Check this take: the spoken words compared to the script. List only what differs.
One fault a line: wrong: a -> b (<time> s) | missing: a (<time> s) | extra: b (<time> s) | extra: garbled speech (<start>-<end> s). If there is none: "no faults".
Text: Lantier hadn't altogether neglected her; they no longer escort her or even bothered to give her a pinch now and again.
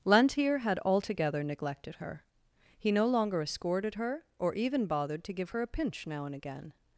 wrong: hadn't -> had (0.6 s)
wrong: they -> he (2.8 s)
wrong: escort -> escorted (3.4 s)